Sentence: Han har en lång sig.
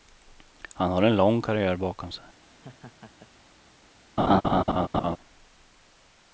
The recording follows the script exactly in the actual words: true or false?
false